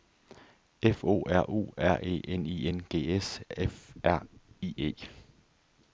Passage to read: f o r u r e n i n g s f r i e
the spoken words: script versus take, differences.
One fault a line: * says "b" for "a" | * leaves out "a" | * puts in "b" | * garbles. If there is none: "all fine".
all fine